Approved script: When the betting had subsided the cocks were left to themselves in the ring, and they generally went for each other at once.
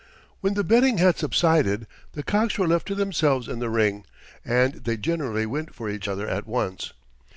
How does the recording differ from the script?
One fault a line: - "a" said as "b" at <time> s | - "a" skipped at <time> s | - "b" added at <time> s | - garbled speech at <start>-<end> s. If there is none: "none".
none